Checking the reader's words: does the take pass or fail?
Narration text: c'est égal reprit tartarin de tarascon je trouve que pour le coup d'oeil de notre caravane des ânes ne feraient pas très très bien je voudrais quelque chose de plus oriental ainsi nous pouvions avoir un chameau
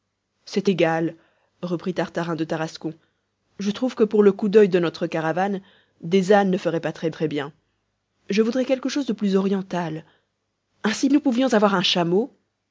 pass